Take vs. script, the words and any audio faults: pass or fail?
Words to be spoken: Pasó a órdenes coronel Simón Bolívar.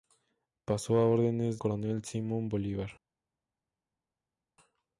pass